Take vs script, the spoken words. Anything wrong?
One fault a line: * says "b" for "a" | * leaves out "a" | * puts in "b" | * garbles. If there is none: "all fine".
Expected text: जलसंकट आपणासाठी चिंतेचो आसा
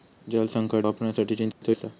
all fine